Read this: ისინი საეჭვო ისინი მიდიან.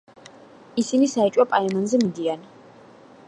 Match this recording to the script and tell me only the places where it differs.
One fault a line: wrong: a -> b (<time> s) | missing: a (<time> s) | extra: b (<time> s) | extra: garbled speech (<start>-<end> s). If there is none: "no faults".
wrong: ისინი -> პაემანზე (1.5 s)